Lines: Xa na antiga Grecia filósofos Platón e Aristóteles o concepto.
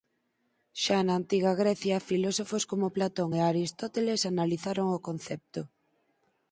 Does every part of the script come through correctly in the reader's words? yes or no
no